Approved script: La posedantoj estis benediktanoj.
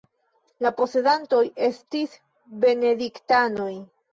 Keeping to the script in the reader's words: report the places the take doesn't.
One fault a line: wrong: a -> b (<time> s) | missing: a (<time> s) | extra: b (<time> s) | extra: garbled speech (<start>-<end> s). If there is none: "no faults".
no faults